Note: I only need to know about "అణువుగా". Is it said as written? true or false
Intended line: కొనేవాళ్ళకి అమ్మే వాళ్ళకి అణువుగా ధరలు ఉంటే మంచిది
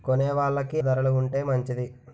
false